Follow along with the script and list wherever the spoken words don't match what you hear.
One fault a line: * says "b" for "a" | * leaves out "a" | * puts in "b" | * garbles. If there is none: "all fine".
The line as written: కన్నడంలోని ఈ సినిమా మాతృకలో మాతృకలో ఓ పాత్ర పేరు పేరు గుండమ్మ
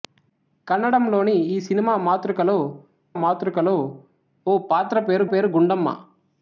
all fine